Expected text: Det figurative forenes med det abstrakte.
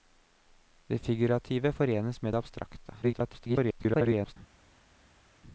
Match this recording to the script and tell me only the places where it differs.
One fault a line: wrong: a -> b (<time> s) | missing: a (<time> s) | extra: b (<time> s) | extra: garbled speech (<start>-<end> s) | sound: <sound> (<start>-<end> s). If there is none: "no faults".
extra: garbled speech (3.0-4.4 s)